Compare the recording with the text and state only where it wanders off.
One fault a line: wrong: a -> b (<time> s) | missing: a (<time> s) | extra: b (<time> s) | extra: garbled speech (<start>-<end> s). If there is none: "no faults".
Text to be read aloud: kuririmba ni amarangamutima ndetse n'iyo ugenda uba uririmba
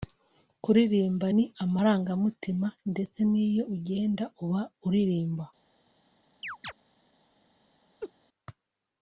no faults